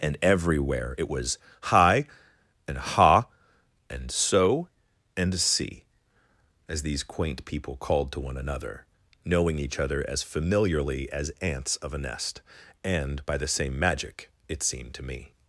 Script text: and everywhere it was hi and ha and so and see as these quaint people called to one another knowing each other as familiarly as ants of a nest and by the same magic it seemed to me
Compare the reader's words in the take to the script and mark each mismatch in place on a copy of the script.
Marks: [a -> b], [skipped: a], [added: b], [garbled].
and everywhere it was hi and ha and so and see as these quaint people called to one another knowing each other as familiarly as ants of a nest and by the same magic it seemed to me